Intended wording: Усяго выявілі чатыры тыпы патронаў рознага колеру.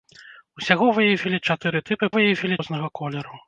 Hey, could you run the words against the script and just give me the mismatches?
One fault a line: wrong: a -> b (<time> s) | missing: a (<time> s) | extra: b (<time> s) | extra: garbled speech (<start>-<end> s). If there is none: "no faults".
wrong: патронаў -> выявілі (2.1 s)